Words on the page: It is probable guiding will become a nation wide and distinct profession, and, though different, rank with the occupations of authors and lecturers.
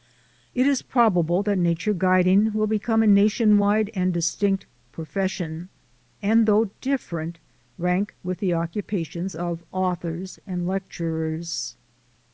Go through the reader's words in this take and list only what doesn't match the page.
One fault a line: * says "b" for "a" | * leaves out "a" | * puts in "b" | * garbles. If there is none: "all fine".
* puts in "that nature"